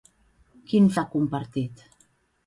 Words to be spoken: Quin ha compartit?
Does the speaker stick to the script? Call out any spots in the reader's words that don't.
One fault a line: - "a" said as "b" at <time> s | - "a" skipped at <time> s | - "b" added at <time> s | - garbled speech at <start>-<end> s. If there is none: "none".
none